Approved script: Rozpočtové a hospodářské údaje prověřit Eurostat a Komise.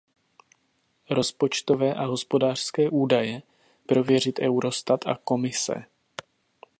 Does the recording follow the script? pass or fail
pass